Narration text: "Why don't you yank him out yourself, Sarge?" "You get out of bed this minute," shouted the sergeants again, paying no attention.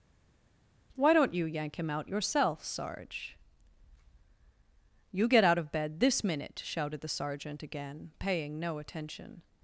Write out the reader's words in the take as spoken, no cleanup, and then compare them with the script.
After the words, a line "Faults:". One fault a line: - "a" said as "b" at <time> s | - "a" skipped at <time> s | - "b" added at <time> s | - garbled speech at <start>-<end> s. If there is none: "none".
"Why don't you yank him out yourself, Sarge?" "You get out of bed this minute," shouted the sergeant again, paying no attention.
Faults:
- "sergeants" said as "sergeant" at 7.1 s